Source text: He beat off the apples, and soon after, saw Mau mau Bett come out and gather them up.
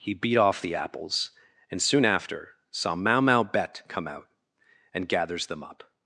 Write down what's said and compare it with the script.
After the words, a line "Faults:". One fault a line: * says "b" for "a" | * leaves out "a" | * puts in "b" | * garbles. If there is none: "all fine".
He beat off the apples, and soon after, saw Mau mau Bett come out and gathers them up.
Faults:
* says "gathers" for "gather"